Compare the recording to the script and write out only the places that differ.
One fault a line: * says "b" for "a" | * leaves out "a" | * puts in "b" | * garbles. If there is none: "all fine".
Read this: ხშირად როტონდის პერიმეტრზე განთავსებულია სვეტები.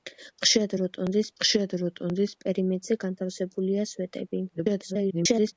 * puts in "ხშირად როტონდის"
* garbles